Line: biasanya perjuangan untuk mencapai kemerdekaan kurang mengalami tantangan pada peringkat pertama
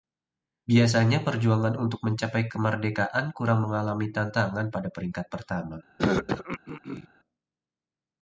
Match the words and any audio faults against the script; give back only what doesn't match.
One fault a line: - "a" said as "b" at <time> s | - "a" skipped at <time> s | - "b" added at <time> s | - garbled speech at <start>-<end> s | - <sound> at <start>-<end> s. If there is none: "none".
- throat clearing at 6.0-7.1 s